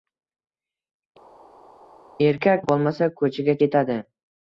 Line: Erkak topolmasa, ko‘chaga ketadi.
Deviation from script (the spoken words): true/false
false